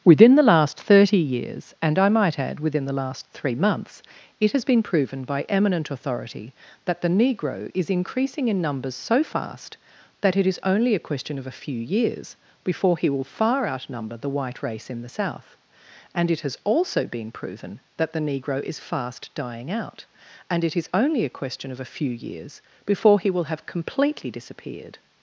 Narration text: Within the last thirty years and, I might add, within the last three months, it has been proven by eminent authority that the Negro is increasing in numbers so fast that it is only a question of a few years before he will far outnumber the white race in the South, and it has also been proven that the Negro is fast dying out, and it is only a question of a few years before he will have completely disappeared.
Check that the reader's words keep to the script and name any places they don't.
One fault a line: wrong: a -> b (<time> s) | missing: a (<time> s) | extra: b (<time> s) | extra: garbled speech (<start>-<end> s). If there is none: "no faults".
no faults